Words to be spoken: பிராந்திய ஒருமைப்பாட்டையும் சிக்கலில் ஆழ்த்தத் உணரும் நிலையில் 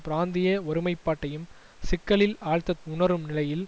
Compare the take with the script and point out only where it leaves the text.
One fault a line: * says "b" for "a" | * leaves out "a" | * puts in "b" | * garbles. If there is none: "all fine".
all fine